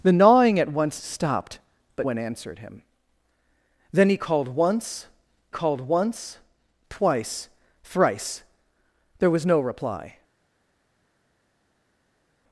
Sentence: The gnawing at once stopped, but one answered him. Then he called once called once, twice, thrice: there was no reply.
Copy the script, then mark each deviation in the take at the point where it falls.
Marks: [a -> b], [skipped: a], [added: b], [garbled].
The gnawing at once stopped, but one answered him. Then he called once called once, twice, thrice: there was no reply.